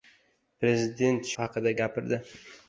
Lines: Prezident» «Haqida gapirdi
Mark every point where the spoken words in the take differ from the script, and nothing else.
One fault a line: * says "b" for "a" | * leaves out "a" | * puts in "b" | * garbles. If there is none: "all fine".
all fine